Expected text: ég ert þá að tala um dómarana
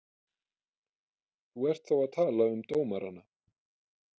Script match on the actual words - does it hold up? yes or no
no